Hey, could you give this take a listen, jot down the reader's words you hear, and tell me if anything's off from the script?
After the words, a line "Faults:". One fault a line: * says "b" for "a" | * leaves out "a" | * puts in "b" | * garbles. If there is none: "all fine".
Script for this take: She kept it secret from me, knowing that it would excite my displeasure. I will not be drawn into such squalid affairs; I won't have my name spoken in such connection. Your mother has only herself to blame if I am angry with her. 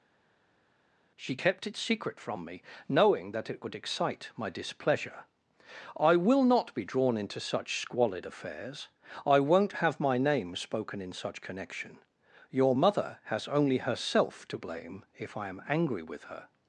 She kept it secret from me, knowing that it would excite my displeasure. I will not be drawn into such squalid affairs; I won't have my name spoken in such connection. Your mother has only herself to blame if I am angry with her.
Faults:
all fine